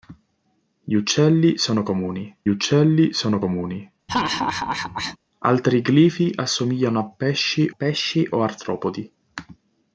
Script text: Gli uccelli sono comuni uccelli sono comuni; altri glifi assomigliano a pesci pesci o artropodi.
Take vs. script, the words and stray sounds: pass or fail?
fail